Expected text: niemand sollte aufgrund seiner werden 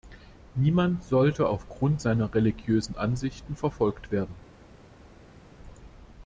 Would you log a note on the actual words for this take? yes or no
yes